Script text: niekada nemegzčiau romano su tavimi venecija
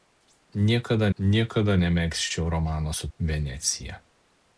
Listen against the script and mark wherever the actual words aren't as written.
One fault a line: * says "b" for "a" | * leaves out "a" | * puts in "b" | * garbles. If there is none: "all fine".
* puts in "niekada"
* leaves out "tavimi"